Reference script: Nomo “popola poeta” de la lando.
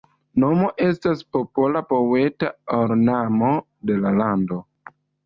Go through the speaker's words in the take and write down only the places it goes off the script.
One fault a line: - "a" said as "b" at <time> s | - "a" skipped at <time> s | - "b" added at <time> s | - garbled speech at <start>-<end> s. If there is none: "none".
- "estas" added at 0.8 s
- "ornamo" added at 2.8 s